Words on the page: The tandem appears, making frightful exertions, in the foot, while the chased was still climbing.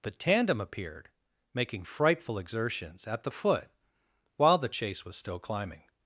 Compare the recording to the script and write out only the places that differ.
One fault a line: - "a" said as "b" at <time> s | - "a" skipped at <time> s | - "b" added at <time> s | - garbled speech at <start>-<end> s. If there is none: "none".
- "appears" said as "appeared" at 0.6 s
- "in" said as "at" at 3.1 s
- "chased" said as "chase" at 4.7 s